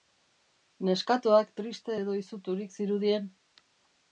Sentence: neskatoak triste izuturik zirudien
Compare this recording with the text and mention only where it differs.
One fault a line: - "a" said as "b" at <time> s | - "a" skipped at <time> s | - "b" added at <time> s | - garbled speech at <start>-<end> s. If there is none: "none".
- "edo" added at 2.0 s